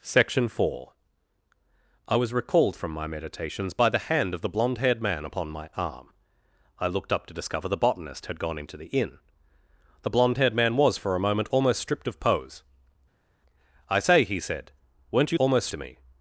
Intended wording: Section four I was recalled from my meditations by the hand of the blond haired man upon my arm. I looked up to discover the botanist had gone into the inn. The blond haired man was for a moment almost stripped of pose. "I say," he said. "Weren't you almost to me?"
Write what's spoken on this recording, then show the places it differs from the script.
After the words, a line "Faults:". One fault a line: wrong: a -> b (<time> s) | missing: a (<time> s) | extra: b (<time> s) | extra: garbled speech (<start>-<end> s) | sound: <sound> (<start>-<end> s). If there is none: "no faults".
Section four I was recalled from my meditations by the hand of the blond haired man upon my arm. I looked up to discover the botanist had gone into the inn. The blond haired man was for a moment almost stripped of pose. "I say," he said. "Weren't you almost to me?"
Faults:
no faults